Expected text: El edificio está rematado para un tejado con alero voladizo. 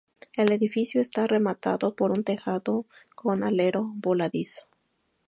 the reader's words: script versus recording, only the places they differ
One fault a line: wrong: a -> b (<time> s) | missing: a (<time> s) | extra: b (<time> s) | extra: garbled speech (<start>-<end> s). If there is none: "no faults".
wrong: para -> por (1.9 s)